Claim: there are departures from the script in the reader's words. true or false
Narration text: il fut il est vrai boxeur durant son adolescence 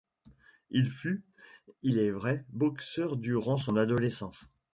false